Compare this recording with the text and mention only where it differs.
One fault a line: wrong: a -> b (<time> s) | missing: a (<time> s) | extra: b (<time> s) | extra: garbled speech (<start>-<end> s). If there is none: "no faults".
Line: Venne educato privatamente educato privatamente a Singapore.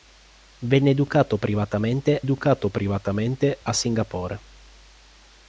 no faults